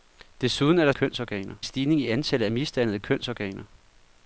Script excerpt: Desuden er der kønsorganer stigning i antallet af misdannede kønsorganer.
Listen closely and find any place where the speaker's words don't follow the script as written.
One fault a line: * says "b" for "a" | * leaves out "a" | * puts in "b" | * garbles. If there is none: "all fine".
all fine